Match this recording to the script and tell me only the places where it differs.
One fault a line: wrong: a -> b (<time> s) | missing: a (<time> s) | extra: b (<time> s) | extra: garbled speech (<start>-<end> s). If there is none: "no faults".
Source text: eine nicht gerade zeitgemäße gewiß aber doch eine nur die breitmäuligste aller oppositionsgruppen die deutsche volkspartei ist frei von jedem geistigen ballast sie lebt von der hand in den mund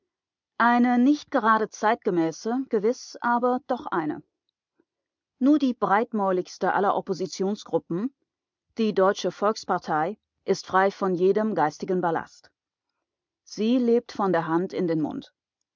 no faults